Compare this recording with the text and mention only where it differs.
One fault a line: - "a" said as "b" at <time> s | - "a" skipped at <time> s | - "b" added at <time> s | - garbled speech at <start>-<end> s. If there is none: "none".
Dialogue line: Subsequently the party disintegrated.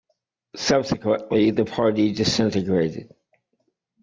none